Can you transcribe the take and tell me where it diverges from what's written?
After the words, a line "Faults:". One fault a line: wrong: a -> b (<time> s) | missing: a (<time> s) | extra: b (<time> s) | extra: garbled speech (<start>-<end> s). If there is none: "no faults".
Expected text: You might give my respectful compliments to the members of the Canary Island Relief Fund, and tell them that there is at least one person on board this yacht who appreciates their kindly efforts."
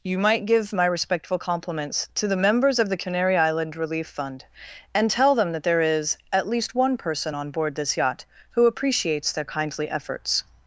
You might give my respectful compliments to the members of the Canary Island Relief Fund, and tell them that there is at least one person on board this yacht who appreciates their kindly efforts."
Faults:
no faults